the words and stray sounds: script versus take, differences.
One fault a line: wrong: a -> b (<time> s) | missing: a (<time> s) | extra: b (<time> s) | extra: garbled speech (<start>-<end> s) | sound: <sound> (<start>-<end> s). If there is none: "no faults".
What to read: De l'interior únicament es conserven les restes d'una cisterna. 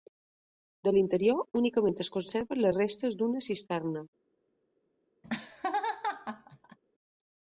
sound: laugh (5.2-6.8 s)